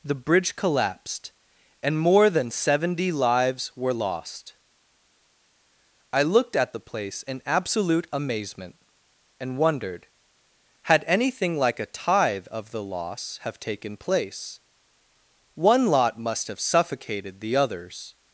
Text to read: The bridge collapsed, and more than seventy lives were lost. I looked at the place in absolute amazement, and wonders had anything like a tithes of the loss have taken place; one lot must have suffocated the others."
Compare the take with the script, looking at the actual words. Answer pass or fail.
fail